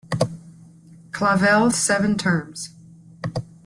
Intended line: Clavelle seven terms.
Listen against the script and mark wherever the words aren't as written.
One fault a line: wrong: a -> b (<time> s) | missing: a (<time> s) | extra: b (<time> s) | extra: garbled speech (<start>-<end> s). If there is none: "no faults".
no faults